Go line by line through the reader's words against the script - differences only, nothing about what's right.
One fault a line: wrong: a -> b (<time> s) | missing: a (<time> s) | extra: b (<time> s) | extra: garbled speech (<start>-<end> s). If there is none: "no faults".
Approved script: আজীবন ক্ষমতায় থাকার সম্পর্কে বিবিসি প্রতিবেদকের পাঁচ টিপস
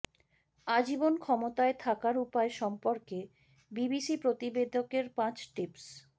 extra: উপায় (2.2 s)